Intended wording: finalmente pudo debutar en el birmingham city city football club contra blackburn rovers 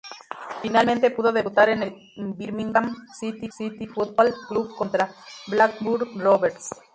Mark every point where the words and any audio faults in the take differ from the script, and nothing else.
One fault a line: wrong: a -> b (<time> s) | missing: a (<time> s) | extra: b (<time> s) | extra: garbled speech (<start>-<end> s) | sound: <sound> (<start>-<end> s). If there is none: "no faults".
no faults